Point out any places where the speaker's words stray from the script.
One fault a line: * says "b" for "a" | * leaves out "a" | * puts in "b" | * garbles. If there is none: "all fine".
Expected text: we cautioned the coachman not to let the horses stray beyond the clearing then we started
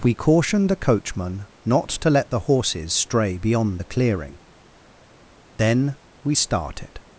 all fine